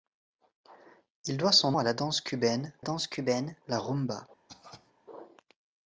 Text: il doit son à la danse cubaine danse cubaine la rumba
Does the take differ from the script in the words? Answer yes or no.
no